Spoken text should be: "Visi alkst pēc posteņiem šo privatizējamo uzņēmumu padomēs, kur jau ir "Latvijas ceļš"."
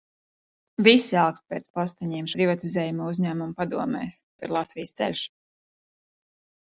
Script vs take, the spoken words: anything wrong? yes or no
yes